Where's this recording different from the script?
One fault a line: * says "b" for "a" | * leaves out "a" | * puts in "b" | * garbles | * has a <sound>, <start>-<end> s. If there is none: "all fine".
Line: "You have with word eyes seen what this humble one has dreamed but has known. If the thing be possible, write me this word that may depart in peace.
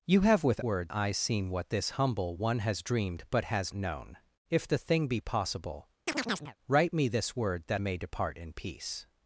* has a chirp, 6.1-6.6 s